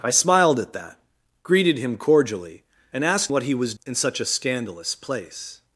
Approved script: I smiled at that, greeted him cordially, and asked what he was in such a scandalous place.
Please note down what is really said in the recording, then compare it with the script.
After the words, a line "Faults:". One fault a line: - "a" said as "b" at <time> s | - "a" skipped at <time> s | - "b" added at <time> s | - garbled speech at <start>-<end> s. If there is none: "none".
I smiled at that, greeted him cordially, and asked what he was in such a scandalous place.
Faults:
none